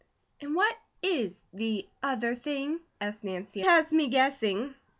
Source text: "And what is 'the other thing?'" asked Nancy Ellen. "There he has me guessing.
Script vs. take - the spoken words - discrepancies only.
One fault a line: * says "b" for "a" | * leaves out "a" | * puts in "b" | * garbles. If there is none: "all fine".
* leaves out "Ellen There he"